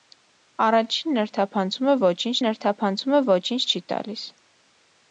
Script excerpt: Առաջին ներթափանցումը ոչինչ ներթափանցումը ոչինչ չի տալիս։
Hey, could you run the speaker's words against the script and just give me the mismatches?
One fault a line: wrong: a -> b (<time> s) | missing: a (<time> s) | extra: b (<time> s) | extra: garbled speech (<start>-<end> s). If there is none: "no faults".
no faults